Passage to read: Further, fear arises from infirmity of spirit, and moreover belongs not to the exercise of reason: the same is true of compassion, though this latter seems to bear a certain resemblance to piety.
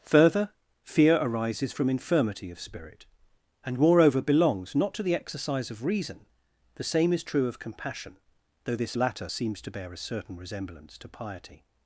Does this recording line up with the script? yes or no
yes